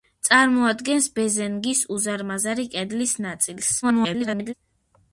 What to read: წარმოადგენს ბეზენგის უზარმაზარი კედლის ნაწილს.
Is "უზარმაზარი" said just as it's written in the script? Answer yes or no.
yes